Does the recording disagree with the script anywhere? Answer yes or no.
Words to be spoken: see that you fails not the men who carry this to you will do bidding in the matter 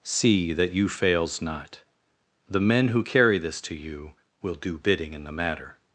no